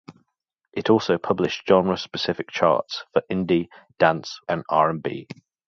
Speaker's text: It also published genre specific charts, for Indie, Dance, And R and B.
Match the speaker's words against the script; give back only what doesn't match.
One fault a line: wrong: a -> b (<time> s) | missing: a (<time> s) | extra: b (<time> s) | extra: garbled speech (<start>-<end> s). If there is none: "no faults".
no faults